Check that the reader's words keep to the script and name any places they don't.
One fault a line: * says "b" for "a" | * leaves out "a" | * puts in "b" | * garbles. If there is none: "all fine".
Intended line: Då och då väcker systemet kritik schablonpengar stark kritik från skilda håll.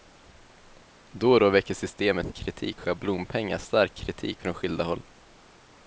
all fine